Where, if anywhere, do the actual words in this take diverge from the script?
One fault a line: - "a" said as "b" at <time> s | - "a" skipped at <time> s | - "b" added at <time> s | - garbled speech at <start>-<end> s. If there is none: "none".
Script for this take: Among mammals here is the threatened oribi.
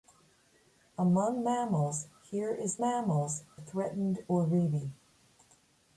- "the" said as "mammals" at 2.8 s